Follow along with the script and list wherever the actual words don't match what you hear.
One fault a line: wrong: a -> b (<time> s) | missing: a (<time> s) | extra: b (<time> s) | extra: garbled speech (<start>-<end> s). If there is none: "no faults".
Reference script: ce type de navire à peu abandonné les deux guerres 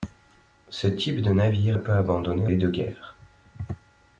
no faults